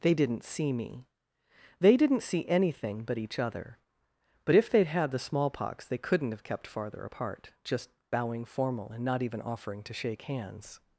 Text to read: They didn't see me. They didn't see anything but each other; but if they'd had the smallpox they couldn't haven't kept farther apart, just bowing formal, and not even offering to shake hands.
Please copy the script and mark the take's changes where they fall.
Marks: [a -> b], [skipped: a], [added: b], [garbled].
They didn't see me. They didn't see anything but each other; but if they'd had the smallpox they couldn't [haven't -> have] kept farther apart, just bowing formal, and not even offering to shake hands.